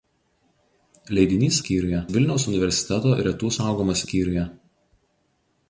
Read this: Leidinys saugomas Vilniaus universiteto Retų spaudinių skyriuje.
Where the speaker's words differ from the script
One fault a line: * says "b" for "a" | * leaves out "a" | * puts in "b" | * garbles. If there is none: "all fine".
* says "skyriuje" for "saugomas"
* says "saugomas" for "spaudinių"